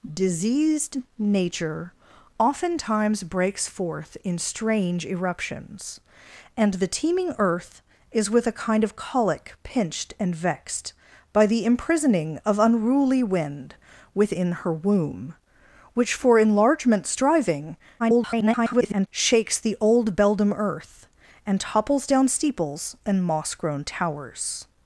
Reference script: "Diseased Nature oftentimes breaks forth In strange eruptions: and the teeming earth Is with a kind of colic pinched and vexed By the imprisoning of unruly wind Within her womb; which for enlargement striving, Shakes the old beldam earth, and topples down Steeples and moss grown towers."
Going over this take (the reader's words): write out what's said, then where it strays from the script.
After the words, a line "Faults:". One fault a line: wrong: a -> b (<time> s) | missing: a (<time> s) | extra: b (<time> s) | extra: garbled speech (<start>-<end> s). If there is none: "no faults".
"Diseased Nature oftentimes breaks forth In strange eruptions: and the teeming earth Is with a kind of colic pinched and vexed By the imprisoning of unruly wind Within her womb; which for enlargement striving, [garbled] Shakes the old beldam earth, and topples down Steeples and moss grown towers."
Faults:
extra: garbled speech (18.0-19.1 s)